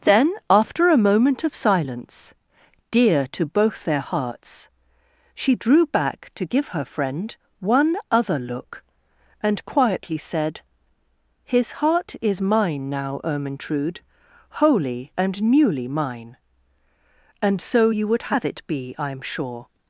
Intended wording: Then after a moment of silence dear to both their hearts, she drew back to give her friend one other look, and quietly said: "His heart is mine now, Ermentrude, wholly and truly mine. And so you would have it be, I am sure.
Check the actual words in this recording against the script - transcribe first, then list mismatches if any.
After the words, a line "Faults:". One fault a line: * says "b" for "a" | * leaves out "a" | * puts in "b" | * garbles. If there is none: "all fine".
Then after a moment of silence dear to both their hearts, she drew back to give her friend one other look, and quietly said: "His heart is mine now, Ermentrude, wholly and newly mine. And so you would have it be, I am sure.
Faults:
* says "newly" for "truly"